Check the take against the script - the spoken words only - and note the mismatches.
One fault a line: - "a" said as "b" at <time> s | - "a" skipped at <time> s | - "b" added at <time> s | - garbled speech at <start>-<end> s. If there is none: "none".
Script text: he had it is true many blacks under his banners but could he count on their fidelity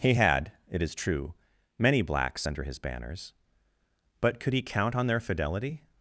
none